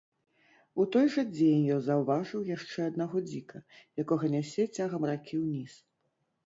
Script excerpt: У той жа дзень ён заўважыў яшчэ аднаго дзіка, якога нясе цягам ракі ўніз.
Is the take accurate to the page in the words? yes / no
yes